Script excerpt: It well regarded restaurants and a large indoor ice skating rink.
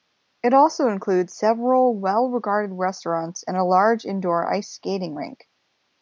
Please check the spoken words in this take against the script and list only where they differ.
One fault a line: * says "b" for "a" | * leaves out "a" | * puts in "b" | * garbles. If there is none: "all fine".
* puts in "also includes several"